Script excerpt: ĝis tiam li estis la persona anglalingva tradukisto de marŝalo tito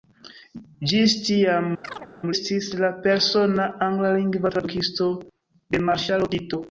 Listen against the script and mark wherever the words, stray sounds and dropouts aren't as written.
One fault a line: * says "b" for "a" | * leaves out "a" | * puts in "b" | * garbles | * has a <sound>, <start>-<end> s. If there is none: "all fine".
* leaves out "li"
* has a chirp, 1.8-2.1 s